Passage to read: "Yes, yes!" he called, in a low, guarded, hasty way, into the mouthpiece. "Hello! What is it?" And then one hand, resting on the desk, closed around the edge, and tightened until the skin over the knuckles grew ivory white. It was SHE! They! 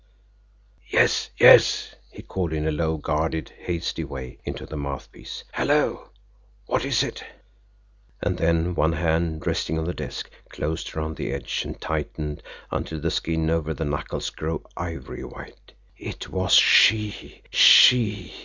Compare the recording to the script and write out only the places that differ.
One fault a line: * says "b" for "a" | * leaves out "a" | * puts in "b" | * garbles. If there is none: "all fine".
* says "She" for "They"